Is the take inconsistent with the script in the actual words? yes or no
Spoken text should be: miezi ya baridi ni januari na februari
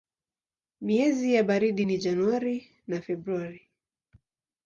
no